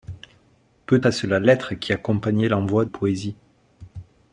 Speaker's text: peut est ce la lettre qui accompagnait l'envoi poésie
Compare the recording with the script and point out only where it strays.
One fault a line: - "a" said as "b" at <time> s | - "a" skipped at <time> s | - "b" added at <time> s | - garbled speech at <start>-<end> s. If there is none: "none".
none